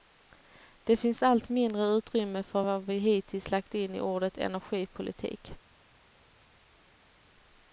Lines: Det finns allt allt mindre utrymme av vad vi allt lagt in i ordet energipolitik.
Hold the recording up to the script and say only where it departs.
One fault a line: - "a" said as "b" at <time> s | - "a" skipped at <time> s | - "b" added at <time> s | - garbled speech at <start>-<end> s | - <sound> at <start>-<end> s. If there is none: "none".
- "allt" skipped at 1.5 s
- "av" said as "för" at 2.4 s
- "allt" said as "hittills" at 3.0 s